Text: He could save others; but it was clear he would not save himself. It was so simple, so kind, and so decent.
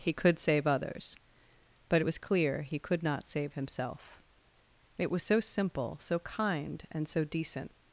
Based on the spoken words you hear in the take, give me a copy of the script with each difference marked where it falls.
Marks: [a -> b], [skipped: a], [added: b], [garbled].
He could save others; but it was clear he [would -> could] not save himself. It was so simple, so kind, and so decent.